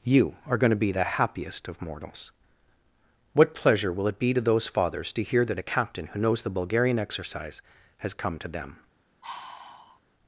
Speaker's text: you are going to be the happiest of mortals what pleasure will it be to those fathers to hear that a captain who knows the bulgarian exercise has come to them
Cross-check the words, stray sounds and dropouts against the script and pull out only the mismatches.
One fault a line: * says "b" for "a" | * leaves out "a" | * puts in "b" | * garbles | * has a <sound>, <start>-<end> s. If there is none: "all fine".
* has a sigh, 9.2-10.0 s